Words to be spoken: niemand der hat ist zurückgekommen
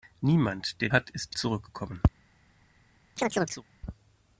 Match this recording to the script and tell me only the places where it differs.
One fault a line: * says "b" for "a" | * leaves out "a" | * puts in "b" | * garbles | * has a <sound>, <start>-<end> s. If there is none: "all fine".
* has a chirp, 3.2-3.6 s